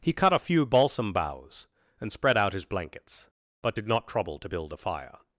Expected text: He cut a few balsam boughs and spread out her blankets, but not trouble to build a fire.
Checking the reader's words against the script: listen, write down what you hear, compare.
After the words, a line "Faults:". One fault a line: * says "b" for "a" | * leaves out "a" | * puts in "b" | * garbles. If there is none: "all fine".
He cut a few balsam boughs and spread out his blankets, but did not trouble to build a fire.
Faults:
* says "his" for "her"
* puts in "did"